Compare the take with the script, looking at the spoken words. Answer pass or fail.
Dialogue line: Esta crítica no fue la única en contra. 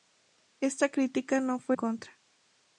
fail